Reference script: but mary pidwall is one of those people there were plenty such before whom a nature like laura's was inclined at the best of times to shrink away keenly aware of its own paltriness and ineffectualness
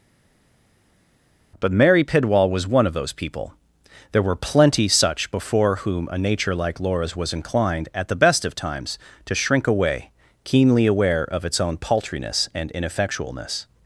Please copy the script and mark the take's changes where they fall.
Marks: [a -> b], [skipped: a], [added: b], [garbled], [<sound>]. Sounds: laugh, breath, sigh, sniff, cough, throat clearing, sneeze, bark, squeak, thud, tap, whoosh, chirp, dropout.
but mary pidwall [is -> was] one of those people there were plenty such before whom a nature like laura's was inclined at the best of times to shrink away keenly aware of its own paltriness and ineffectualness